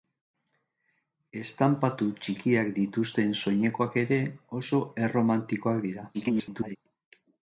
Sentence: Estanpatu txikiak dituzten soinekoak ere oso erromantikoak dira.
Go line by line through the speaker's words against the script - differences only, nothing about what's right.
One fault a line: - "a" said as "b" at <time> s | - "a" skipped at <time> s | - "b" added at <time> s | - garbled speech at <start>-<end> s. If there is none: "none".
- garbled speech at 6.1-6.8 s